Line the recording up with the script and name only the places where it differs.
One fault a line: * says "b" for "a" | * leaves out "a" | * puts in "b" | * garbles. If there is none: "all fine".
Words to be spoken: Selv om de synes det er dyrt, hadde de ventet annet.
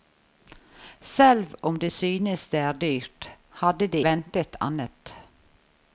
all fine